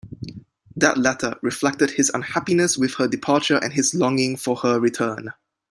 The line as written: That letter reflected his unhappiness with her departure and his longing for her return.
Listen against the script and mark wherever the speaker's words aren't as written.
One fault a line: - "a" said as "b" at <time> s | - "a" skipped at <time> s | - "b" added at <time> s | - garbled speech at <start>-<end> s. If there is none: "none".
none